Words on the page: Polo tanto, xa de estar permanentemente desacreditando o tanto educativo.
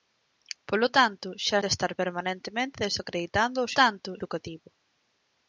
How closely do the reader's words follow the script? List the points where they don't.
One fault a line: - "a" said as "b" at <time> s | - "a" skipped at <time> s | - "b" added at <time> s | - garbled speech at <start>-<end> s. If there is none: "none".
none